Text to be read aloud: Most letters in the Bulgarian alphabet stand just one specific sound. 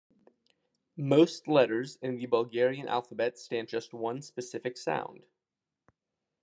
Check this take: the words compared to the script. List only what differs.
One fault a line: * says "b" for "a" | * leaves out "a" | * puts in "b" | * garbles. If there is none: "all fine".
all fine